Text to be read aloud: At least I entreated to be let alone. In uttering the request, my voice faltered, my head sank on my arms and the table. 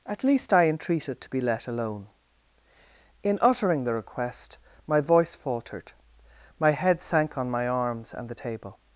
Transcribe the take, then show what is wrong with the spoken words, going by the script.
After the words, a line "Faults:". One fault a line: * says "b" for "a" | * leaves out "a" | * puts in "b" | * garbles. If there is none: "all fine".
At least I entreated to be let alone. In uttering the request, my voice faltered, my head sank on my arms and the table.
Faults:
all fine